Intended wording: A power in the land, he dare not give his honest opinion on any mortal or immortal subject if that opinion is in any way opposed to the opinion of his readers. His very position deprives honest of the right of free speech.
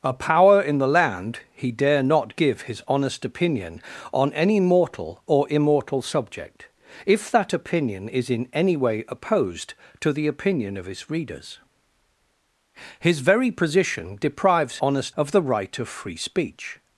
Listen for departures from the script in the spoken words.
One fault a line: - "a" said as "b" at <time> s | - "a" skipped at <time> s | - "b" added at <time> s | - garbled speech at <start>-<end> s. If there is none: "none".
none